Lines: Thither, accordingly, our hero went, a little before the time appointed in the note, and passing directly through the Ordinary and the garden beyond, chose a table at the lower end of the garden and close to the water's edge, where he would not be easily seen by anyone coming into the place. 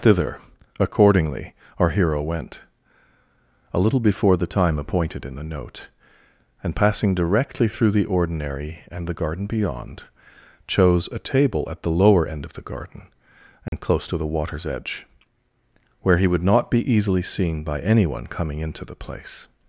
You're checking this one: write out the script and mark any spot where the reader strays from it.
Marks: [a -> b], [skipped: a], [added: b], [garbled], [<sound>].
Thither, accordingly, our hero went, a little before the time appointed in the note, and passing directly through the Ordinary and the garden beyond, chose a table at the lower end of the garden and [dropout] close to the water's edge, where he would not be easily seen by anyone coming into the place.